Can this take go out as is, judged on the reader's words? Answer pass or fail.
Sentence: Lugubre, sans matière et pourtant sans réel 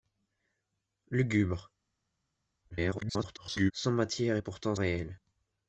fail